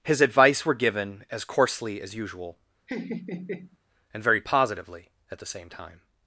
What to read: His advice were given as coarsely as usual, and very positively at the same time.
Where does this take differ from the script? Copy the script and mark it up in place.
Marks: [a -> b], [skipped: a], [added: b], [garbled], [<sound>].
His advice were given as coarsely as usual, [laugh] and very positively at the same time.